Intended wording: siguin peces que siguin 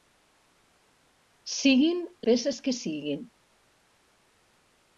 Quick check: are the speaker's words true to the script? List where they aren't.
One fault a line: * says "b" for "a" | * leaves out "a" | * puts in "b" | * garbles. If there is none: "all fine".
all fine